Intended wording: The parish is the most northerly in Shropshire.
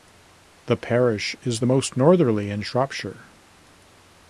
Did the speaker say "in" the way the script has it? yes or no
yes